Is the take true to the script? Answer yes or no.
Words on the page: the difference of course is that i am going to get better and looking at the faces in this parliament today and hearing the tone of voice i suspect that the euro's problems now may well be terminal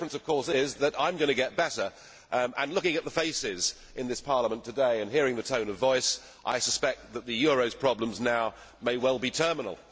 yes